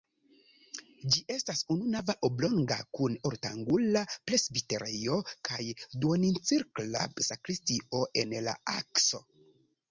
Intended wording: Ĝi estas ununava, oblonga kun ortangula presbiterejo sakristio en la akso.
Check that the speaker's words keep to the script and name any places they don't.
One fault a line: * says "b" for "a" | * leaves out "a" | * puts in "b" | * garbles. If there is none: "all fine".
* puts in "kaj duoncirkla"